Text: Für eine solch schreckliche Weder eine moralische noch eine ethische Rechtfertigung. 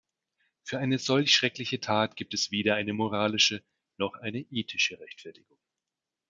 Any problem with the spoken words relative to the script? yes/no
yes